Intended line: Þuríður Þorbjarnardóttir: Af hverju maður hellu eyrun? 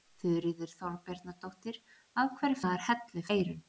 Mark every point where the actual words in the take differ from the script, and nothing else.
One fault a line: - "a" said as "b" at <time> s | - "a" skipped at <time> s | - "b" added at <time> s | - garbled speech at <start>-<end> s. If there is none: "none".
none